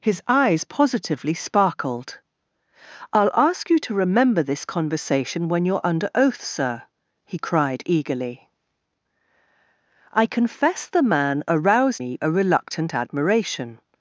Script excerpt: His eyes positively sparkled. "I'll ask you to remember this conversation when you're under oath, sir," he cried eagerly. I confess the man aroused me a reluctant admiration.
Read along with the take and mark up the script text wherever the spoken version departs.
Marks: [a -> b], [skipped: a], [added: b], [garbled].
His eyes positively sparkled. "I'll ask you to remember this conversation when you're under oath, sir," he cried eagerly. I confess the man aroused me a reluctant admiration.